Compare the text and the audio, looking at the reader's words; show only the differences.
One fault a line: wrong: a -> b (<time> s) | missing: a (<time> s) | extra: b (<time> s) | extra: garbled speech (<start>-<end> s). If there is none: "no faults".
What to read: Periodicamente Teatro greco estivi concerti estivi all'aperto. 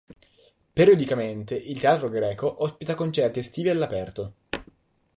extra: il (1.5 s)
wrong: estivi -> ospita (2.6 s)